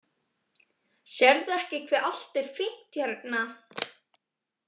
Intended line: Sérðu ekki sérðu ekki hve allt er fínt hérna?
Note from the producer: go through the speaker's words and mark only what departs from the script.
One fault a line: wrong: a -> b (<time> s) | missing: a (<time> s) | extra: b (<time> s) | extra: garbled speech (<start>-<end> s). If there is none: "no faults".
missing: sérðu ekki (1.8 s)